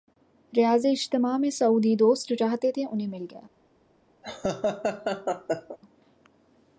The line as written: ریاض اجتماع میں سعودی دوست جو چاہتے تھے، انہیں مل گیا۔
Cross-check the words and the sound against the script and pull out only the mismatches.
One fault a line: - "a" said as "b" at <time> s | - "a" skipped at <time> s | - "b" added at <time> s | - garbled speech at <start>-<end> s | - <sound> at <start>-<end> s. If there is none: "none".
- laugh at 4.2-5.8 s